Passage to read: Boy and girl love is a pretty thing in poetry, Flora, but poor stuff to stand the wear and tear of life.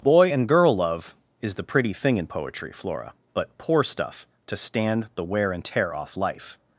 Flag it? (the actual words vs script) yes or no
yes